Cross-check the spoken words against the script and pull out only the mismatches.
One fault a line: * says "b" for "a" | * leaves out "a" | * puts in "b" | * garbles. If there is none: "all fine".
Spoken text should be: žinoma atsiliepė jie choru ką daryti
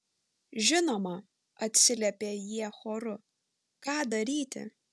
all fine